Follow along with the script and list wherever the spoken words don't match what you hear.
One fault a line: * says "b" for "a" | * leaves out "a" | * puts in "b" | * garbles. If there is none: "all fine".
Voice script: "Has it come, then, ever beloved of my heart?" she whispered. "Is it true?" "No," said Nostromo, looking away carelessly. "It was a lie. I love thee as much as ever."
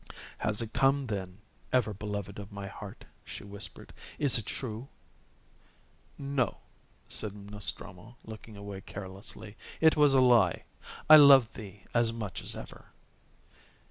all fine